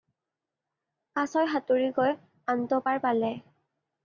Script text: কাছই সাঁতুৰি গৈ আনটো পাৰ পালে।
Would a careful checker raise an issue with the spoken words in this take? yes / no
no